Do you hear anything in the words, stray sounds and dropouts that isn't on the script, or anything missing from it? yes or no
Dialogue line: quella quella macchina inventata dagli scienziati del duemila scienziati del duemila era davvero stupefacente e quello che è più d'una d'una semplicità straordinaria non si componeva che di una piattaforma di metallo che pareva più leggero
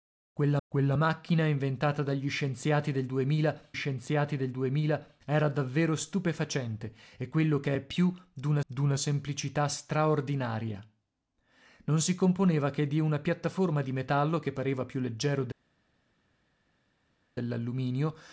no